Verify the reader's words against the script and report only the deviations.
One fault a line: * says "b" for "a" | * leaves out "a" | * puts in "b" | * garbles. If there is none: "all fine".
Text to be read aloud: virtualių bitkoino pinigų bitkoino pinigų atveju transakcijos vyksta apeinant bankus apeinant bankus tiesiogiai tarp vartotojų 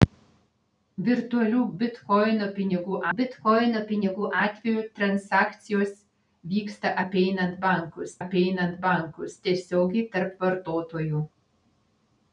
all fine